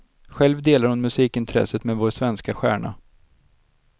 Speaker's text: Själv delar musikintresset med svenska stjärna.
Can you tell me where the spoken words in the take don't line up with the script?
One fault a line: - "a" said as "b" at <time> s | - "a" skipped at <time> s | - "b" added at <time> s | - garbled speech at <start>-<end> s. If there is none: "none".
- "hon" added at 0.9 s
- "vår" added at 2.0 s